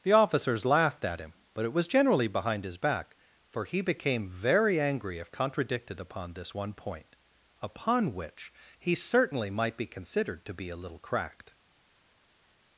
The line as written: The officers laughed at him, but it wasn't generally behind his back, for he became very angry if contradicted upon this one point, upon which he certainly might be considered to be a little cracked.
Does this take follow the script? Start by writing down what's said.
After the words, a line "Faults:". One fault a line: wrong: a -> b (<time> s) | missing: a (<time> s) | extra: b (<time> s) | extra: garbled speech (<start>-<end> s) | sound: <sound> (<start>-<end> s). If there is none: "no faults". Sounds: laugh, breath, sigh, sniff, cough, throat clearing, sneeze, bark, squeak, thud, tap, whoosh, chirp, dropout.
The officers laughed at him, but it was generally behind his back, for he became very angry if contradicted upon this one point, upon which he certainly might be considered to be a little cracked.
Faults:
wrong: wasn't -> was (1.7 s)